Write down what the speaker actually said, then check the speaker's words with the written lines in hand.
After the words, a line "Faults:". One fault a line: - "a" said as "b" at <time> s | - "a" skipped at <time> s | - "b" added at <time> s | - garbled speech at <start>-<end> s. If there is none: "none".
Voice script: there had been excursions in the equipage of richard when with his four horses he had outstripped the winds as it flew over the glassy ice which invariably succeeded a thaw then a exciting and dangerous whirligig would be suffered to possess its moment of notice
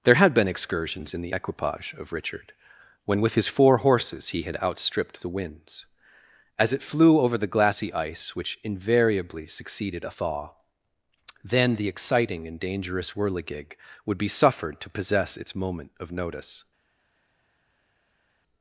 there had been excursions in the equipage of richard when with his four horses he had outstripped the winds as it flew over the glassy ice which invariably succeeded a thaw then the exciting and dangerous whirligig would be suffered to possess its moment of notice
Faults:
- "a" said as "the" at 11.8 s